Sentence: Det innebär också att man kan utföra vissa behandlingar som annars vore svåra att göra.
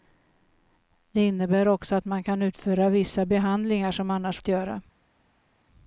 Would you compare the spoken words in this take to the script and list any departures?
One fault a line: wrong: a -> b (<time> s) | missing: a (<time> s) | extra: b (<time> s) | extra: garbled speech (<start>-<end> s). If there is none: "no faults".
missing: vore svåra (4.4 s)